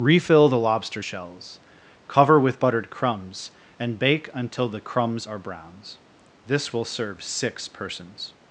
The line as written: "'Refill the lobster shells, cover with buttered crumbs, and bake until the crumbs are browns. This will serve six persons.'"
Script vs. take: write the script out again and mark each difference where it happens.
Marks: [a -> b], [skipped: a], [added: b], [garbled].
"'Refill the lobster shells, cover with buttered crumbs, and bake until the crumbs are browns. This will serve six persons.'"